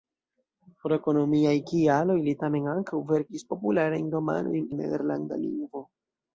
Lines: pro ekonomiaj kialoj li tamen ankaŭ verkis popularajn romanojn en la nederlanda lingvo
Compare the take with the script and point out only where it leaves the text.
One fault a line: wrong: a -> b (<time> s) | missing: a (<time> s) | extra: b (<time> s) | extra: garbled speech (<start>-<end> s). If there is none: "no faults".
missing: en (4.7 s)